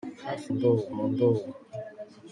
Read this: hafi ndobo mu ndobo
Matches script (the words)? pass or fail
pass